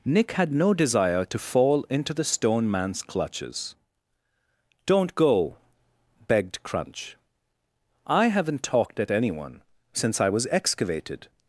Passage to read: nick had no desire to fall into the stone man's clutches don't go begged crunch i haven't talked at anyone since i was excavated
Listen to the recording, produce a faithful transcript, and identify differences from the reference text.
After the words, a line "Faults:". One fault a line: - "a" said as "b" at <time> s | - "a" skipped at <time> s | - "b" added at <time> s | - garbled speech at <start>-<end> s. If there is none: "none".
nick had no desire to fall into the stone man's clutches don't go begged crunch i haven't talked at anyone since i was excavated
Faults:
none